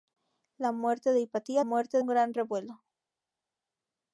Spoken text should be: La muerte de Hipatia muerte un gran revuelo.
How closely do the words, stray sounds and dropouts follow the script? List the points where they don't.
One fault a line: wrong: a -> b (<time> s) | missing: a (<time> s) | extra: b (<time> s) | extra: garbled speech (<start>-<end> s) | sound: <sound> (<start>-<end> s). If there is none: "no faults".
no faults